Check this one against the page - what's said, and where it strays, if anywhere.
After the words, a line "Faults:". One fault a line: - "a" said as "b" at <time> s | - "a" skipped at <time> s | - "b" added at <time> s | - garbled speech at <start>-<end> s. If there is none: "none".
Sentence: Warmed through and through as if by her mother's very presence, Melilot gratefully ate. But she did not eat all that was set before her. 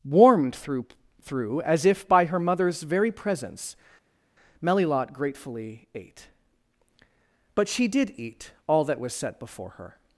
Warmed through through as if by her mother's very presence, Melilot gratefully ate. But she did eat all that was set before her.
Faults:
- "and" skipped at 0.9 s
- "not" skipped at 8.1 s